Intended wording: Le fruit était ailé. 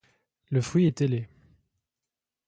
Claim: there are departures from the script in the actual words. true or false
true